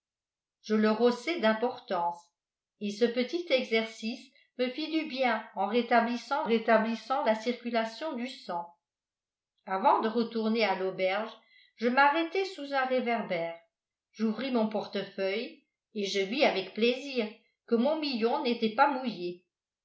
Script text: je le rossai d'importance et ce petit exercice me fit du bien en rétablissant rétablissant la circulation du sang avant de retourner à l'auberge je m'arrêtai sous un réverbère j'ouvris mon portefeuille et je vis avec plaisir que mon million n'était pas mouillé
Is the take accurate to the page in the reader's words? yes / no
yes